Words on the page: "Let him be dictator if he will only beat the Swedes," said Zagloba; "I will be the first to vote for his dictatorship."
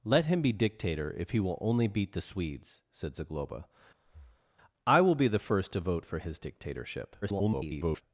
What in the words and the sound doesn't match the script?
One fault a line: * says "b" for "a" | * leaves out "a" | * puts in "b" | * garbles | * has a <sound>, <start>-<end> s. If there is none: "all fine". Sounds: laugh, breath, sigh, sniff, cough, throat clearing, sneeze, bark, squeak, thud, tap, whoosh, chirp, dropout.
* has a breath, 4.0-4.5 s
* garbles